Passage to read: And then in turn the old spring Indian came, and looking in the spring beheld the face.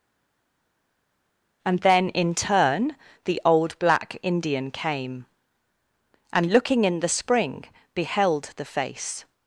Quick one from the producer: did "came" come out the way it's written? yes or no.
yes